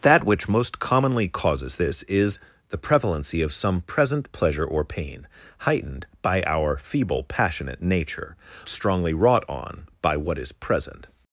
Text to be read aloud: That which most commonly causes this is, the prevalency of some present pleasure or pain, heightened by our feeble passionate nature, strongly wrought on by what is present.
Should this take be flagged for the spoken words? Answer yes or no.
no